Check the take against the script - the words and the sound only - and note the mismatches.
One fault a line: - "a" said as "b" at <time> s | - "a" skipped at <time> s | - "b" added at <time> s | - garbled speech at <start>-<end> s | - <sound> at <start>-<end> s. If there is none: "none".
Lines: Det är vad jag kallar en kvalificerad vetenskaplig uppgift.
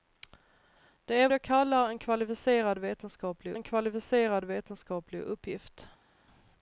- "vad" skipped at 1.3 s
- "en kvalificerad vetenskaplig" added at 3.5 s